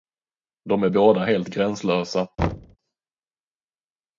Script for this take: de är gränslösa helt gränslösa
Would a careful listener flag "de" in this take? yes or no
no